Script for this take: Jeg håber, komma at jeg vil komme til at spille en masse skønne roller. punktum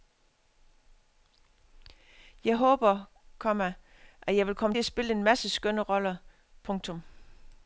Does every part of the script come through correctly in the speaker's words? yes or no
no